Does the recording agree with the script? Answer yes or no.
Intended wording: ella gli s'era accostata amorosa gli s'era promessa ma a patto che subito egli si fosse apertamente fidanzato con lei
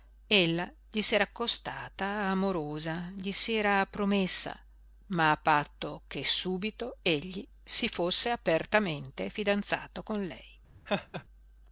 yes